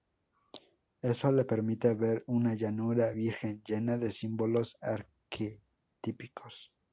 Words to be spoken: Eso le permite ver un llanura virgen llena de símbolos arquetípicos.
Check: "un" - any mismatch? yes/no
yes